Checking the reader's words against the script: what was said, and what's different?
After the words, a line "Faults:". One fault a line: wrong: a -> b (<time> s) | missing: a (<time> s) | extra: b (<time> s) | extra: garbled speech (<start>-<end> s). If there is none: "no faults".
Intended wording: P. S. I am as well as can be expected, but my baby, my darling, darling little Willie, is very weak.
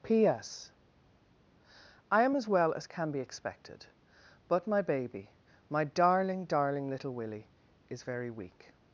P. S. I am as well as can be expected, but my baby, my darling, darling little Willie, is very weak.
Faults:
no faults